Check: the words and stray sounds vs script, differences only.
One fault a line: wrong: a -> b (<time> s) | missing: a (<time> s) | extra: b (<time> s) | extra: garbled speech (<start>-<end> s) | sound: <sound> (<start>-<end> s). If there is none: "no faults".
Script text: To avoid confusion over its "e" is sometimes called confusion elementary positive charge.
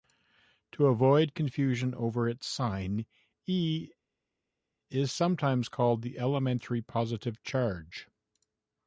extra: sign (2.5 s)
wrong: confusion -> the (6.0 s)